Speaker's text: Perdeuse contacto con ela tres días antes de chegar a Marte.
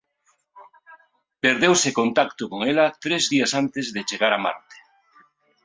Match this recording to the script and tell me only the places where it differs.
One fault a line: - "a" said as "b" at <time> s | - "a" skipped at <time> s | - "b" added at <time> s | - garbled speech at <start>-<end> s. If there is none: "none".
none